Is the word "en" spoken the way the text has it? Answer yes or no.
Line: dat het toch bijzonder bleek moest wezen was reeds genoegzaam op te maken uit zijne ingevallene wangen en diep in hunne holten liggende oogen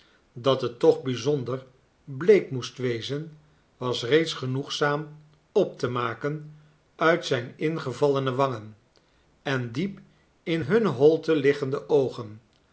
yes